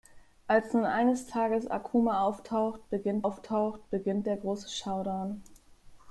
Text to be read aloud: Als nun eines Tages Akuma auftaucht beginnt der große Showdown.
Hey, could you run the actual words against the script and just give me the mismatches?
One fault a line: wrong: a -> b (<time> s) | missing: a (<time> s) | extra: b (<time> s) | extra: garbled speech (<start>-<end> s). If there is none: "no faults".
extra: auftaucht beginnt (3.2 s)